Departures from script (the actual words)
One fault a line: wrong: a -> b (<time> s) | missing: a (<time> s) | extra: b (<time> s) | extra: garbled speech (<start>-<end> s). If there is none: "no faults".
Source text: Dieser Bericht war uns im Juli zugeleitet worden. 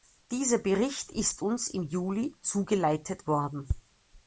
wrong: war -> ist (1.1 s)